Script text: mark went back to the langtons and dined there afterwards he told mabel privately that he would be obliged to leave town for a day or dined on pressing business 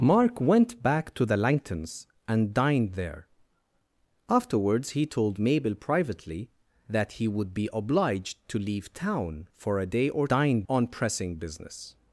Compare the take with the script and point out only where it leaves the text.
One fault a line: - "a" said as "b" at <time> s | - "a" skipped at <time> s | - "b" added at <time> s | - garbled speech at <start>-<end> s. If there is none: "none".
none